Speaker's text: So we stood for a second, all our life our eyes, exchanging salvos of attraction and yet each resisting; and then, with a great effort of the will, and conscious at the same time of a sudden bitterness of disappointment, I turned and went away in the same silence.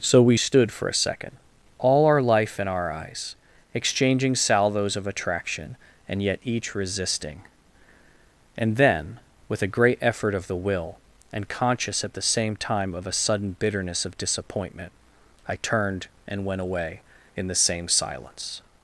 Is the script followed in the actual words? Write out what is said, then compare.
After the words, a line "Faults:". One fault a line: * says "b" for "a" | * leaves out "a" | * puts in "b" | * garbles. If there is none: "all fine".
So we stood for a second, all our life in our eyes, exchanging salvos of attraction and yet each resisting; and then, with a great effort of the will, and conscious at the same time of a sudden bitterness of disappointment, I turned and went away in the same silence.
Faults:
* puts in "in"